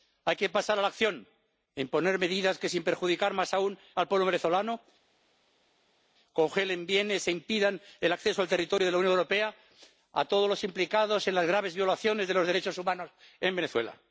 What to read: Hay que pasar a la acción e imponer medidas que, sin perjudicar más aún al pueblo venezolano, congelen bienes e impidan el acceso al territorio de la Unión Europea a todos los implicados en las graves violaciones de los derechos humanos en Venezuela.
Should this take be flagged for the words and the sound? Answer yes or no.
no